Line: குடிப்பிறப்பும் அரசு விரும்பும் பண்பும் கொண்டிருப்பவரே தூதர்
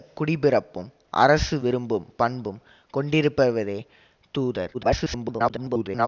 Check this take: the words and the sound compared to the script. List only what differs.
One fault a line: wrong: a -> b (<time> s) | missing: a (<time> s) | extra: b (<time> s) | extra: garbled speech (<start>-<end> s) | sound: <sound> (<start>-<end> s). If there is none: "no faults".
extra: garbled speech (4.7-6.1 s)